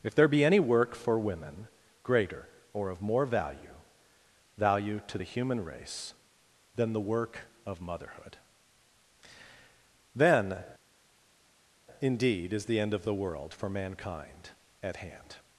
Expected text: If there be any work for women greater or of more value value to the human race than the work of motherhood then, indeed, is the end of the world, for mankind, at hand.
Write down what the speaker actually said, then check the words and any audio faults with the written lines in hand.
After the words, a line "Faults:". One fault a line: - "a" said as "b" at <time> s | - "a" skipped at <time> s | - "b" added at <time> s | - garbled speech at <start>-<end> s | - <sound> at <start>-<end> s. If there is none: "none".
If there be any work for women greater or of more value value to the human race than the work of motherhood then, indeed, is the end of the world, for mankind, at hand.
Faults:
none